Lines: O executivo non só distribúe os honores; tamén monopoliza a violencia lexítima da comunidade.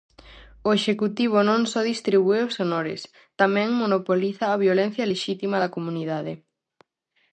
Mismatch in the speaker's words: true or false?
false